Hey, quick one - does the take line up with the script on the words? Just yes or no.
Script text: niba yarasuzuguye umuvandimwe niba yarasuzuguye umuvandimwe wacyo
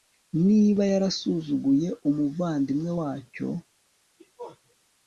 no